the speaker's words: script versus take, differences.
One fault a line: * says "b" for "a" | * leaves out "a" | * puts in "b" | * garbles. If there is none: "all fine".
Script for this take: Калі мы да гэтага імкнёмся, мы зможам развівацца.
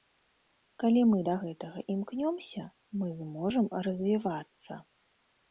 all fine